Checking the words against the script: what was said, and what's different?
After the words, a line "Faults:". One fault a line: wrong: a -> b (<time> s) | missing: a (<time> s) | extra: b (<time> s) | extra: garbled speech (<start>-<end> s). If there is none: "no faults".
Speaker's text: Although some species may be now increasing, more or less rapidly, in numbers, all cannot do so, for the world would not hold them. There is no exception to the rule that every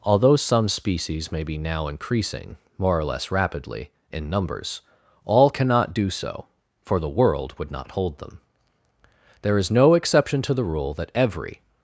Although some species may be now increasing, more or less rapidly, in numbers, all cannot do so, for the world would not hold them. There is no exception to the rule that every
Faults:
no faults